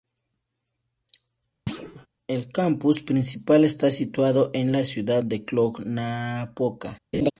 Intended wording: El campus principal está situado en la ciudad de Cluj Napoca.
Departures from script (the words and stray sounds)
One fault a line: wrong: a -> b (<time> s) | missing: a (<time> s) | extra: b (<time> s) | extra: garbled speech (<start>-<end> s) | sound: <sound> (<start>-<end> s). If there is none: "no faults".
sound: thud (1.7-2.1 s)
sound: laugh (7.1-7.3 s)